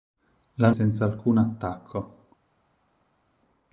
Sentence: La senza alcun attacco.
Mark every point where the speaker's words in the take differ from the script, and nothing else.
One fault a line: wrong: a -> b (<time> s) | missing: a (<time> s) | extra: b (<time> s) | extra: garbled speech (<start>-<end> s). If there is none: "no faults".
no faults